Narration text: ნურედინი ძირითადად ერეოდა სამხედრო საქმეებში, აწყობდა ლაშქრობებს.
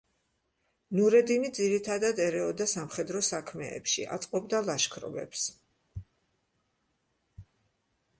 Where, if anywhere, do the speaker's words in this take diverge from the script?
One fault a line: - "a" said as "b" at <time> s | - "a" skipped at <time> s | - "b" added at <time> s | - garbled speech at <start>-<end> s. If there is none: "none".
none